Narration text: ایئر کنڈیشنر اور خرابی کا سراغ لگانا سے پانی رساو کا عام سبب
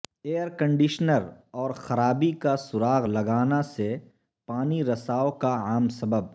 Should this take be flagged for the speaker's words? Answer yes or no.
no